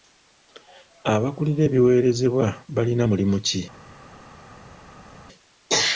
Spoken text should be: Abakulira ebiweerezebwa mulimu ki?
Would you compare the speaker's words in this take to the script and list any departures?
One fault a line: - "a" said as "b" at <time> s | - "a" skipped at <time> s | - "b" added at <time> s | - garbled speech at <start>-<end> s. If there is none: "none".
- "balina" added at 2.7 s